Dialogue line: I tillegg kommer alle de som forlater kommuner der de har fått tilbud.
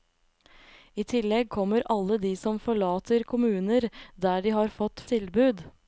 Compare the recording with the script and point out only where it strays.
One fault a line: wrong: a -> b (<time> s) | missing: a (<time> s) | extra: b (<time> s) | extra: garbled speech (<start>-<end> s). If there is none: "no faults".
no faults